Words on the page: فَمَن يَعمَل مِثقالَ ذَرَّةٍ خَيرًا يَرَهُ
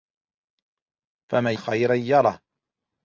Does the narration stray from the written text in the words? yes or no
yes